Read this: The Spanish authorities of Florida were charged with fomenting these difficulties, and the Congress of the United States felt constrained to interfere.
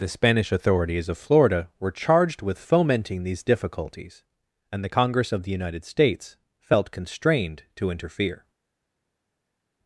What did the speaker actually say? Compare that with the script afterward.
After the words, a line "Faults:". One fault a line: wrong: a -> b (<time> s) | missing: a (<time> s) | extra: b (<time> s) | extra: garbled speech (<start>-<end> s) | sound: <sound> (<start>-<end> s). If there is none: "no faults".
The Spanish authorities of Florida were charged with fomenting these difficulties, and the Congress of the United States felt constrained to interfere.
Faults:
no faults